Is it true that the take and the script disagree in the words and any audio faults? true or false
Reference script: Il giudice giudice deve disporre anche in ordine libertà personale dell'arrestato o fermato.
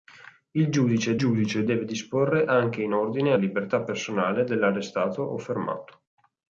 false